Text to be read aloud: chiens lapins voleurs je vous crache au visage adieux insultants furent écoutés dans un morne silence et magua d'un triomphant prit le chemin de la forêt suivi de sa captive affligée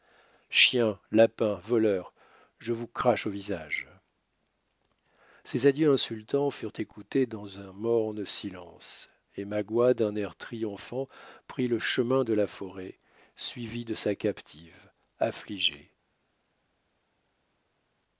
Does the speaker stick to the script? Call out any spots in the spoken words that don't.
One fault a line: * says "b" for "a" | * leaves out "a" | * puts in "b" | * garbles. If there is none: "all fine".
* puts in "ces"
* puts in "air"